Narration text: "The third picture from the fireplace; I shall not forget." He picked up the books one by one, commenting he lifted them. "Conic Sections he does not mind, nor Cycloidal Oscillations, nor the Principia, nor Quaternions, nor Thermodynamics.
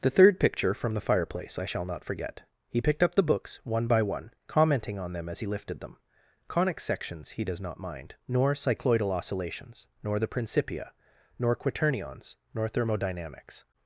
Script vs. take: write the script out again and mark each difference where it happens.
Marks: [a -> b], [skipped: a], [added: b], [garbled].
"The third picture from the fireplace; I shall not forget." He picked up the books one by one, commenting [added: on them as] he lifted them. "Conic Sections he does not mind, nor Cycloidal Oscillations, nor the Principia, nor Quaternions, nor Thermodynamics.